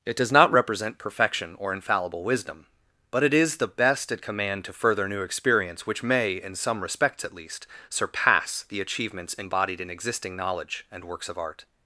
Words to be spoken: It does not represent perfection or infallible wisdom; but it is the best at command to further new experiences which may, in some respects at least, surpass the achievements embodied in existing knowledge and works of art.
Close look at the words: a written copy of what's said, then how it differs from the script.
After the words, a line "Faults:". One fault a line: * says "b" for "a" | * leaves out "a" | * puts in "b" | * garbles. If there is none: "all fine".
It does not represent perfection or infallible wisdom; but it is the best at command to further new experience which may, in some respects at least, surpass the achievements embodied in existing knowledge and works of art.
Faults:
* says "experience" for "experiences"